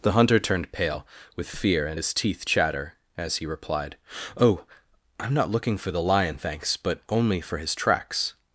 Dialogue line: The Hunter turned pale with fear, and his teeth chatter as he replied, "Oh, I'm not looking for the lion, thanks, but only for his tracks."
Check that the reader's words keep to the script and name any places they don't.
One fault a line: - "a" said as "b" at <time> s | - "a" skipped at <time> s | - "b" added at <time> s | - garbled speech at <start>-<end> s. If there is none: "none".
none